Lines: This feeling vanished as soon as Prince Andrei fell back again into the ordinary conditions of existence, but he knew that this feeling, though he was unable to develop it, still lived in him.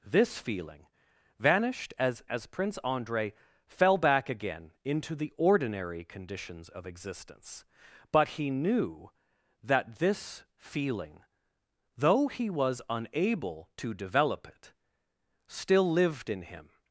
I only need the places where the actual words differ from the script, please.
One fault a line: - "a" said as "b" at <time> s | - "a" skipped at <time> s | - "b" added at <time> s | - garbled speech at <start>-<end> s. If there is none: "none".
- "soon" skipped at 2.2 s